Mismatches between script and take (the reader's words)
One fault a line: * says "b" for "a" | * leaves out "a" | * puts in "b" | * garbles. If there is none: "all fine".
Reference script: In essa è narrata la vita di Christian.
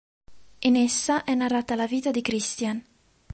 all fine